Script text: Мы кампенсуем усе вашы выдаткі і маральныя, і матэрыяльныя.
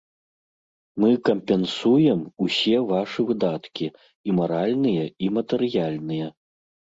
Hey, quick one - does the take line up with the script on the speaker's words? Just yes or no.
yes